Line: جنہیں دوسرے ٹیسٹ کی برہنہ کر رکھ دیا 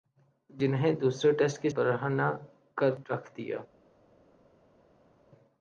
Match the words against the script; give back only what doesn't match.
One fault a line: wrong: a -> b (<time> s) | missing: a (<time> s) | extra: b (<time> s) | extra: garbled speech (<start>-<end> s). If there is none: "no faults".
no faults